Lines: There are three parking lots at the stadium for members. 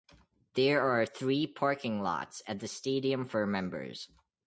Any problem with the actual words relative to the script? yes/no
no